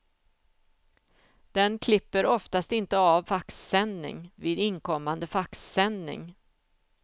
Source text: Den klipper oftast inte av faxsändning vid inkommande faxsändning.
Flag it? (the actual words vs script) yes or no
no